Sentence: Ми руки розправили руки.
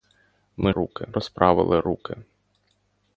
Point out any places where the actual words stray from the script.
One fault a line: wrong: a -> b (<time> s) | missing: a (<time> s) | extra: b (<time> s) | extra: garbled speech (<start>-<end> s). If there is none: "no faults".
no faults